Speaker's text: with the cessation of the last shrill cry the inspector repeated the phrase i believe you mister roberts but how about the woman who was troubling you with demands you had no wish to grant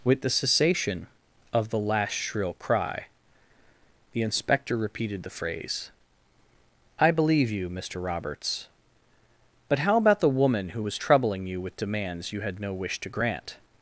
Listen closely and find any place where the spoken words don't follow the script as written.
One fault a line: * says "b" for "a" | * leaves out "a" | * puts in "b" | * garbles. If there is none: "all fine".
all fine